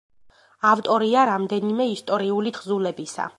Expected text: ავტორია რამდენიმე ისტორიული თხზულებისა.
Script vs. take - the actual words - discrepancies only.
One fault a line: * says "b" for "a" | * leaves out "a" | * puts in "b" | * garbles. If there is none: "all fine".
all fine